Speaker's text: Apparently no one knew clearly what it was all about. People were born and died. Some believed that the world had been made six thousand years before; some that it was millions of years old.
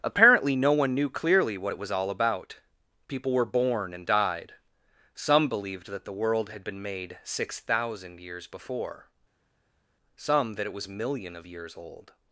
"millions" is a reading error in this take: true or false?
true